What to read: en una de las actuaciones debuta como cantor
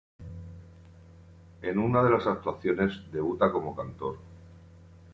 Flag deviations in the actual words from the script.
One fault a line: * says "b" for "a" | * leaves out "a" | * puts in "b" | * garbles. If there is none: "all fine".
all fine